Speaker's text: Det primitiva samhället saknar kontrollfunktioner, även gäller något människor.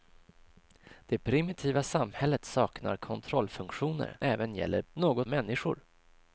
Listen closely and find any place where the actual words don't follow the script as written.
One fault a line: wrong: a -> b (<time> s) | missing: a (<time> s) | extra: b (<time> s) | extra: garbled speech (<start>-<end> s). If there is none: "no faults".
no faults